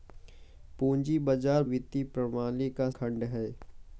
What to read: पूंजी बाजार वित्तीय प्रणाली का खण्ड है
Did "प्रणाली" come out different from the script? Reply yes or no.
no